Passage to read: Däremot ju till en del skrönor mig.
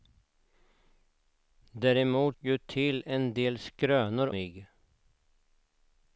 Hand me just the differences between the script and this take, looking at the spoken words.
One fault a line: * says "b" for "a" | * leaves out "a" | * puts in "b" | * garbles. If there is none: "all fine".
all fine